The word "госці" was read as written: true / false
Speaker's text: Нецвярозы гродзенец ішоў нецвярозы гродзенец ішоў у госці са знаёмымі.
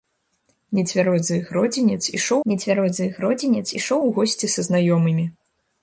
true